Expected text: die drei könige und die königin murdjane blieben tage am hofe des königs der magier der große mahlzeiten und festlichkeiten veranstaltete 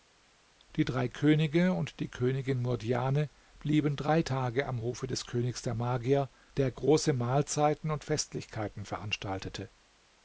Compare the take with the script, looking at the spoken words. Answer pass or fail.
fail